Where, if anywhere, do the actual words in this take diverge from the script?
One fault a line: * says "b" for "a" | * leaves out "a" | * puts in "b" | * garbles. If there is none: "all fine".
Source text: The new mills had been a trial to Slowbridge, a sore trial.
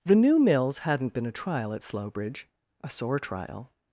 * says "hadn't" for "had"
* says "at" for "to"